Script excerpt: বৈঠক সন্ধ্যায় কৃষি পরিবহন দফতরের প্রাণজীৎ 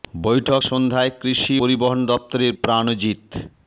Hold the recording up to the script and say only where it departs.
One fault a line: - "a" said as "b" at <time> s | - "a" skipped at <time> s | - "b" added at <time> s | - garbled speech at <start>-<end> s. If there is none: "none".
none